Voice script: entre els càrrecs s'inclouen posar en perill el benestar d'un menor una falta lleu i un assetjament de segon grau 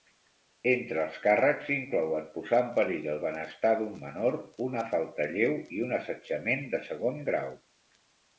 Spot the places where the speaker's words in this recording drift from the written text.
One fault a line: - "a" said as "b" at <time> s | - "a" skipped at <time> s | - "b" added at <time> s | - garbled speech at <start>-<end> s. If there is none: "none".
none